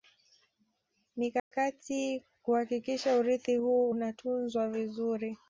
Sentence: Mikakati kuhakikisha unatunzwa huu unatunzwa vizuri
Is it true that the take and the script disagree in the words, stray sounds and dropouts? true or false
true